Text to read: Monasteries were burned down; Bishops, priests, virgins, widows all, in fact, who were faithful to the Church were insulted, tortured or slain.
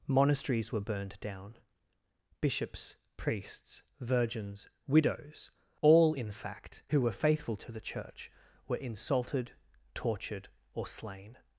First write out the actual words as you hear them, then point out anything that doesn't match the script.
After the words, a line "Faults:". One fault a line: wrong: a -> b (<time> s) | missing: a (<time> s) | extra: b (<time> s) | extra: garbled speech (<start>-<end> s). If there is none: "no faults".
Monasteries were burned down; Bishops, priests, virgins, widows all, in fact, who were faithful to the Church were insulted, tortured or slain.
Faults:
no faults